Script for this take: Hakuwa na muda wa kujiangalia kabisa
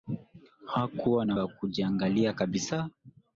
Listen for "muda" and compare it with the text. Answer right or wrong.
wrong